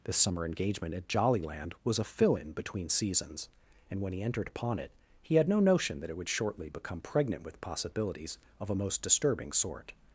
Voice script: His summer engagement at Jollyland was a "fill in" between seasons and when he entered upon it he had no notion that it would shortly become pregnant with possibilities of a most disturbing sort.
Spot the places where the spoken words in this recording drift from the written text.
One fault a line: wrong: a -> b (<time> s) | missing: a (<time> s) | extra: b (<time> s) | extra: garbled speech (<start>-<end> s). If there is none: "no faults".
wrong: His -> This (0.0 s)